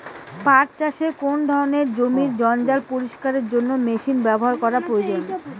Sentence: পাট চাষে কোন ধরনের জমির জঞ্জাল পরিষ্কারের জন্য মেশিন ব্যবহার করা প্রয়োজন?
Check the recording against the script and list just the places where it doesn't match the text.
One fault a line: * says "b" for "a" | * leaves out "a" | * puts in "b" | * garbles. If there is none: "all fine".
all fine